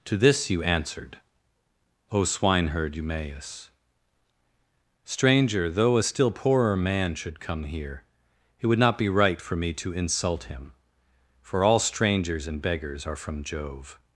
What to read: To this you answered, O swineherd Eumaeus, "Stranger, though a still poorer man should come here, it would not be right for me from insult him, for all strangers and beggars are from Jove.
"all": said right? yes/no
yes